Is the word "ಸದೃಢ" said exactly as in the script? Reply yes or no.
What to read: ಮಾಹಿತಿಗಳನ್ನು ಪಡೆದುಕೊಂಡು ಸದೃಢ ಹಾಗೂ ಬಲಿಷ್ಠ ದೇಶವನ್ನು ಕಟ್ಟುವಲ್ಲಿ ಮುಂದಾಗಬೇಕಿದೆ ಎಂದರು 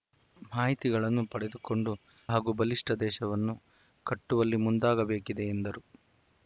no